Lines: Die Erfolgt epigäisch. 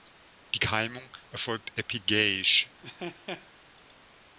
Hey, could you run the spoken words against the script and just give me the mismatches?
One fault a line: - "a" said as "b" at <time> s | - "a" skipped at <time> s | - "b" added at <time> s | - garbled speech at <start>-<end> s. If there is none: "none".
- "Keimung" added at 0.6 s